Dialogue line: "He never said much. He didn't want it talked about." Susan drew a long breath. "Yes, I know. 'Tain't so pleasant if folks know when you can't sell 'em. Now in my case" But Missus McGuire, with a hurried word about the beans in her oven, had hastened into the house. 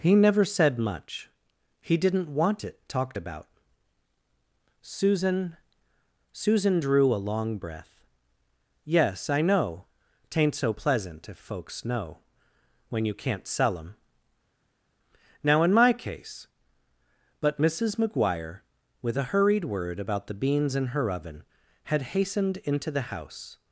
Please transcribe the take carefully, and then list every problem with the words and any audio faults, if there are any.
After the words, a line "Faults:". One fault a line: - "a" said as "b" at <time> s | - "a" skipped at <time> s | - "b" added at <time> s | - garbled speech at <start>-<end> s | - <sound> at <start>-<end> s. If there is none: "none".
"He never said much. He didn't want it talked about." Susan Susan drew a long breath. "Yes, I know. 'Tain't so pleasant if folks know when you can't sell 'em. Now in my case" But Missus McGuire, with a hurried word about the beans in her oven, had hastened into the house.
Faults:
- "Susan" added at 6.3 s